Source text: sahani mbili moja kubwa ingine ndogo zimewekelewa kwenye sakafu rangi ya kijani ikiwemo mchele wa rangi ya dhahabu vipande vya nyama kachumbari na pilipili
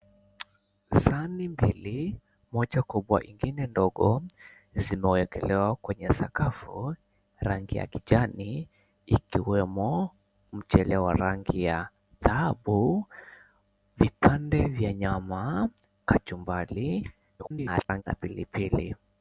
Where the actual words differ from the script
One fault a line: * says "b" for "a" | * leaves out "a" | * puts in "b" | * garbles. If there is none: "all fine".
* garbles